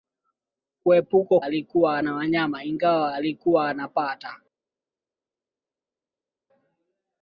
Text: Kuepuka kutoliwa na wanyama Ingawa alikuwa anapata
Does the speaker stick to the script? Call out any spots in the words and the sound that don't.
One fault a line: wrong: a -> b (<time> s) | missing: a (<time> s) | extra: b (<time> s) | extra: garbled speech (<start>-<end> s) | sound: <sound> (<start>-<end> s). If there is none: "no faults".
wrong: kutoliwa -> alikuwa (1.4 s)